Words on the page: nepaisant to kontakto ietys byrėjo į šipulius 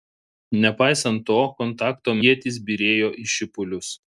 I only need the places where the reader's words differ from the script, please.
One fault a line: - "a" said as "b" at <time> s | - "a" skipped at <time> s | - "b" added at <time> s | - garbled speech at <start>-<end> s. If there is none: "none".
none